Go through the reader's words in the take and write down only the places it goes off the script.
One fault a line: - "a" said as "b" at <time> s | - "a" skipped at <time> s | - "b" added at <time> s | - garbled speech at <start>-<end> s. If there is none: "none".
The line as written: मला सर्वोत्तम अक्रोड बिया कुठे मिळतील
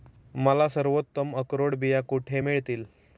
none